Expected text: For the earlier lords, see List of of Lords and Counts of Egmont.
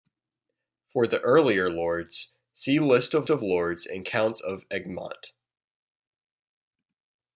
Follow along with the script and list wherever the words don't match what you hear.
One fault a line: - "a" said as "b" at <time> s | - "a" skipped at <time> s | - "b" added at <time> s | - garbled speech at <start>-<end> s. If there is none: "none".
none